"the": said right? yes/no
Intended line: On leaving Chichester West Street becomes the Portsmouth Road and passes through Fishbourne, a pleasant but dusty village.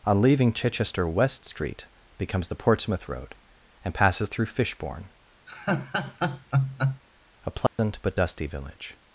yes